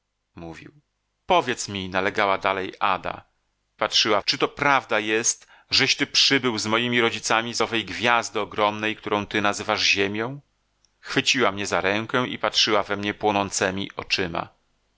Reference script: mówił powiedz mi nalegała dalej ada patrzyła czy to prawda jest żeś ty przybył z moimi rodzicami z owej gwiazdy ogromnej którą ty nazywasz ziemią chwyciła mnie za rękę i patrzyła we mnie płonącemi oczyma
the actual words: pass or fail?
pass